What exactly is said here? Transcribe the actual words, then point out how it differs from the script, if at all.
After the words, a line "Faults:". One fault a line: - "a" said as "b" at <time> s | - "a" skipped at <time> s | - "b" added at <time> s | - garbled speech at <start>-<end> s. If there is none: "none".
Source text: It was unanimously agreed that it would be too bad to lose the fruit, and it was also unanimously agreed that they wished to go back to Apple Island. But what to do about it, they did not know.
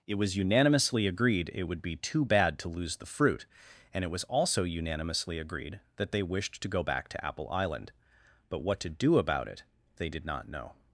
It was unanimously agreed it would be too bad to lose the fruit, and it was also unanimously agreed that they wished to go back to Apple Island. But what to do about it, they did not know.
Faults:
- "that" skipped at 1.5 s